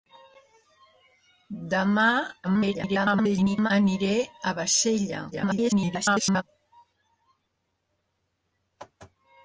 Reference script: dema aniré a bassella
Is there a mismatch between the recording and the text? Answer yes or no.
yes